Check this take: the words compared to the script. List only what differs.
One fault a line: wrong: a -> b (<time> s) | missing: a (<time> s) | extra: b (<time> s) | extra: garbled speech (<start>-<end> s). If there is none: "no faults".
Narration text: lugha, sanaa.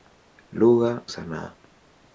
no faults